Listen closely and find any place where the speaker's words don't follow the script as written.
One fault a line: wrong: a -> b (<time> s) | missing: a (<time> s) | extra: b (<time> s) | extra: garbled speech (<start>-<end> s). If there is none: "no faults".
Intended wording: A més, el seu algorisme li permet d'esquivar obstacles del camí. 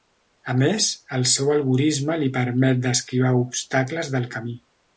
no faults